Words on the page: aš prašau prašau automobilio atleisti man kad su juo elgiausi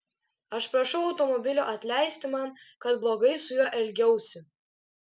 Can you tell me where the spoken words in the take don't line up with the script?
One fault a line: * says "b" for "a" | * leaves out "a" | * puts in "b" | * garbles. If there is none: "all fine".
* leaves out "prašau"
* puts in "blogai"